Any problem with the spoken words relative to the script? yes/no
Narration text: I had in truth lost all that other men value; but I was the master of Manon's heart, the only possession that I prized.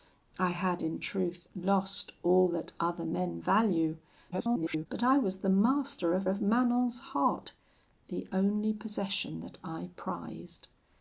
yes